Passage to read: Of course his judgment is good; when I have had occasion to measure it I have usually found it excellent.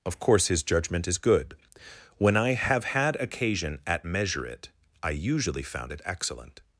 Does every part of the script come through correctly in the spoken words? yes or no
no